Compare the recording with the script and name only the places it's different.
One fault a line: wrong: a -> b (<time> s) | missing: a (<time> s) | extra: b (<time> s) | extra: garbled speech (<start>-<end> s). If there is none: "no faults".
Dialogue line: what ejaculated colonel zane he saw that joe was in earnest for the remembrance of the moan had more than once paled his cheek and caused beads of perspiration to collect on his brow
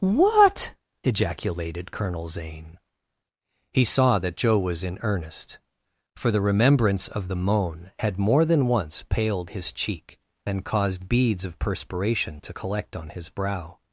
no faults